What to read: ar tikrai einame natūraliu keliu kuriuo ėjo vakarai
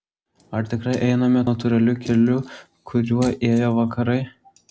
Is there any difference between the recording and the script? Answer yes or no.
no